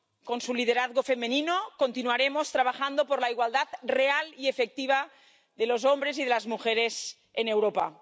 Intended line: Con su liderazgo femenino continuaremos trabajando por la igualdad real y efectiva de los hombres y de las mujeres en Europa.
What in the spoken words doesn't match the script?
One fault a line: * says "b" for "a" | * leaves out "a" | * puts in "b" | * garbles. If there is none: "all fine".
all fine